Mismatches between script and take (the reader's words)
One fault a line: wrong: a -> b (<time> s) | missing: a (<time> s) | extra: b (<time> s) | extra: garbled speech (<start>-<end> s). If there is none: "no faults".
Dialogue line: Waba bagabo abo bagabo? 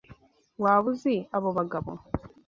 wrong: bagabo -> uzi (0.9 s)